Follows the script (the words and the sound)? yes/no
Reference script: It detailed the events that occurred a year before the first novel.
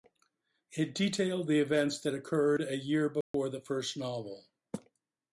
no